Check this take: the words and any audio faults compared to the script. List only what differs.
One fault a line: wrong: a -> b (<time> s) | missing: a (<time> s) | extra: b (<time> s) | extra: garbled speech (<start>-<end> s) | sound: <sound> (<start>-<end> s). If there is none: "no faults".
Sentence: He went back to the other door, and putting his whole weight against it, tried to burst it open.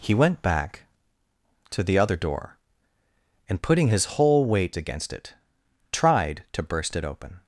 no faults